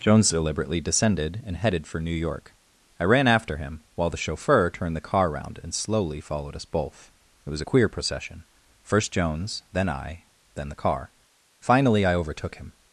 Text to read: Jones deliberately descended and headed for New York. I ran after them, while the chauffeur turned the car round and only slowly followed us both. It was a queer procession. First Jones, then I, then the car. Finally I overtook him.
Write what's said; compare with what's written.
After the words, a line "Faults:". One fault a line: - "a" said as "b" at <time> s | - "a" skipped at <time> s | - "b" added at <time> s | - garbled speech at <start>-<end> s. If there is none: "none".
Jones deliberately descended and headed for New York. I ran after him, while the chauffeur turned the car round and slowly followed us both. It was a queer procession. First Jones, then I, then the car. Finally I overtook him.
Faults:
- "them" said as "him" at 3.6 s
- "only" skipped at 5.8 s